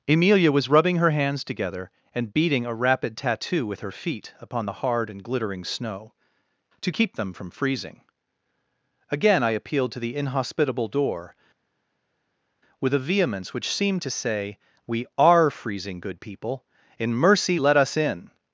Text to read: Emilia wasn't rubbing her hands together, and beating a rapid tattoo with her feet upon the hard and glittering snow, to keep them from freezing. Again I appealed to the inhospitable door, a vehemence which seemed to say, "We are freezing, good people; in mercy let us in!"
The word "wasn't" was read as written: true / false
false